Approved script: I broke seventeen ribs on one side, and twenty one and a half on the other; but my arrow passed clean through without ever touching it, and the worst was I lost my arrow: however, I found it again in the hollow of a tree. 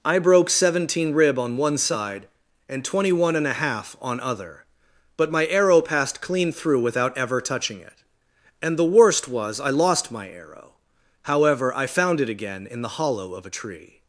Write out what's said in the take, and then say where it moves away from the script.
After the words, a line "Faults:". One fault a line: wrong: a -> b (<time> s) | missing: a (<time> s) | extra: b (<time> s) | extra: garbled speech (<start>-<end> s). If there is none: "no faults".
I broke seventeen rib on one side, and twenty one and a half on other; but my arrow passed clean through without ever touching it, and the worst was I lost my arrow: however, I found it again in the hollow of a tree.
Faults:
wrong: ribs -> rib (1.1 s)
missing: the (4.2 s)